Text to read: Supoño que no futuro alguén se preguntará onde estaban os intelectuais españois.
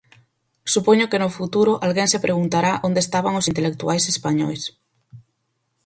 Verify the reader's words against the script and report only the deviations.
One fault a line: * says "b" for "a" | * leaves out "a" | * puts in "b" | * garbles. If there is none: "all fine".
all fine